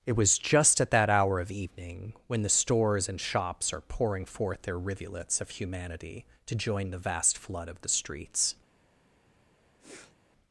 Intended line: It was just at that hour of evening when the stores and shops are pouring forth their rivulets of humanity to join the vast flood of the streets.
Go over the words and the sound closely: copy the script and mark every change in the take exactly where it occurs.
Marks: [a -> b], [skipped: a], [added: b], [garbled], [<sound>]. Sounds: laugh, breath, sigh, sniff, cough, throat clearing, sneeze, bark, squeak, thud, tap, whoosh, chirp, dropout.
It was just at that hour of evening when the stores and shops are pouring forth their rivulets of humanity to join the vast flood of the streets. [sniff]